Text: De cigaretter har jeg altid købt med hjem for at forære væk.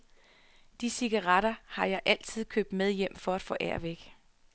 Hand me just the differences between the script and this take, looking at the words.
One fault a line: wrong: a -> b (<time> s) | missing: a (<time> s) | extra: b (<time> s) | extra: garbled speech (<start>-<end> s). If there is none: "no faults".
no faults